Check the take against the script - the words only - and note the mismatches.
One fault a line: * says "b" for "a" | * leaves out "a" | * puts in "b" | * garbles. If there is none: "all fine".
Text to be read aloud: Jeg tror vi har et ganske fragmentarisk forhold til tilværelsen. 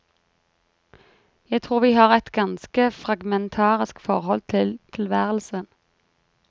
all fine